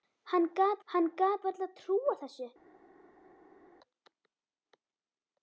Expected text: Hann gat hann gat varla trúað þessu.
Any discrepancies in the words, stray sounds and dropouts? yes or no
no